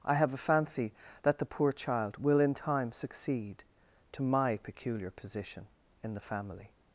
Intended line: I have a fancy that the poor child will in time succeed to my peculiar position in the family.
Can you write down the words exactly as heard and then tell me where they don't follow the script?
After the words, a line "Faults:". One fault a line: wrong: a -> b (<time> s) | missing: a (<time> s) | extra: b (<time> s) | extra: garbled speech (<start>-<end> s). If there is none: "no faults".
I have a fancy that the poor child will in time succeed to my peculiar position in the family.
Faults:
no faults